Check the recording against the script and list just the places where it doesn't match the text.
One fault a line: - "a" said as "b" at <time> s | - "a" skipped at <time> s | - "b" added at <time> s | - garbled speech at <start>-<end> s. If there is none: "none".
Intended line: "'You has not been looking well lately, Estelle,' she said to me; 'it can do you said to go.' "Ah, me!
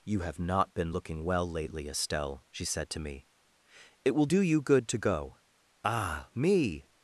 - "has" said as "have" at 0.2 s
- "can" said as "will" at 4.1 s
- "said" said as "good" at 4.6 s